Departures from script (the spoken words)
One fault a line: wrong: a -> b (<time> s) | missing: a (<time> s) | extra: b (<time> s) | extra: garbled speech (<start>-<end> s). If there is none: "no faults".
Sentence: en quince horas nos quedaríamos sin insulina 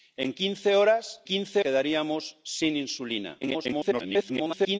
wrong: nos -> quince (1.2 s)
extra: garbled speech (3.4-4.8 s)